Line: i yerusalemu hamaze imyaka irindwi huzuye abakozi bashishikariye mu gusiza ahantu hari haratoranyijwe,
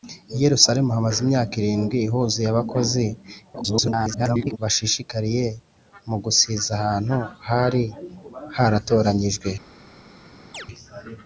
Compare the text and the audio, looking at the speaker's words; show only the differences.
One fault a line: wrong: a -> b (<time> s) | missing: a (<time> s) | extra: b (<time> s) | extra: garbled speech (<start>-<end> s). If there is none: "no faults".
extra: garbled speech (3.5-4.6 s)